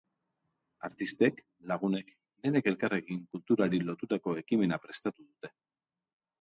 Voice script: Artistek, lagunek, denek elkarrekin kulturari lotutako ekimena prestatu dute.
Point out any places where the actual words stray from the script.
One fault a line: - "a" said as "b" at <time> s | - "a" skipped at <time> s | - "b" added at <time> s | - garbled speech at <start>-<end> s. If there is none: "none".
none